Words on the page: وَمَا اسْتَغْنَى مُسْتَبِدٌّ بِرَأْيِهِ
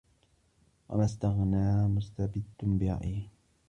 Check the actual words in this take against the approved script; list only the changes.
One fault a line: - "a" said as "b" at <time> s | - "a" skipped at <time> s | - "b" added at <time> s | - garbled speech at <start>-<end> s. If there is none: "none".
none